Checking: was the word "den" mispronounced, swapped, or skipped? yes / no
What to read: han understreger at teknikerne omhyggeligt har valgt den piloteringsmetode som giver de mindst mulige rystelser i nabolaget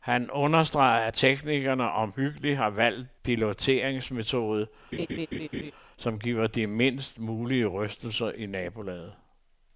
yes